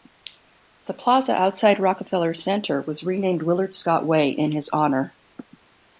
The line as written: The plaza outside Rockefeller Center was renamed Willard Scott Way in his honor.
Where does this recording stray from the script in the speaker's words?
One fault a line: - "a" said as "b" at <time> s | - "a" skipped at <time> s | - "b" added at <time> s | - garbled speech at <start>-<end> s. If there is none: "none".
none